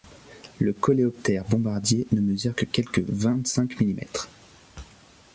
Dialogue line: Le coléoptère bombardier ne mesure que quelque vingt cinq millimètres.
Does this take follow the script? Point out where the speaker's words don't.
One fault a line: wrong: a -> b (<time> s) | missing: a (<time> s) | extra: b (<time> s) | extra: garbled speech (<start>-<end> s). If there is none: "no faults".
no faults